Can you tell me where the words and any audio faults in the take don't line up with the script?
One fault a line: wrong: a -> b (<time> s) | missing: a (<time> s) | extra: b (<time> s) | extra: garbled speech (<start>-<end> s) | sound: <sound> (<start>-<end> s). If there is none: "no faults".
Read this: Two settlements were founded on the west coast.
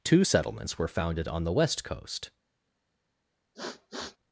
sound: sniff (3.5-4.2 s)